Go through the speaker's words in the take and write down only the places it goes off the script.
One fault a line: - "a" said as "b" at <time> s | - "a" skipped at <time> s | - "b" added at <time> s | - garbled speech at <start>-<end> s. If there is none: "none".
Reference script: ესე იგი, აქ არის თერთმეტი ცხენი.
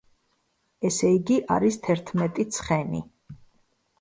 - "აქ" skipped at 1.4 s